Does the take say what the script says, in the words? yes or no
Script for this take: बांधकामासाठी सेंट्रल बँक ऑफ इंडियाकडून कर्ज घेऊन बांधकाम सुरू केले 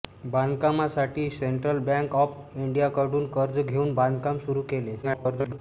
no